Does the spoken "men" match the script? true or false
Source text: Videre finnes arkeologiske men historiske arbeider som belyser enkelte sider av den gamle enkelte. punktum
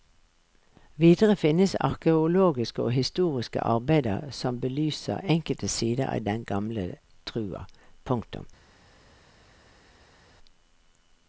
false